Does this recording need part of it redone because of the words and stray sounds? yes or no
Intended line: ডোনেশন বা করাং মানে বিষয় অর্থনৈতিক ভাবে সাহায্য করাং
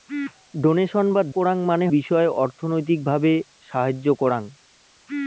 no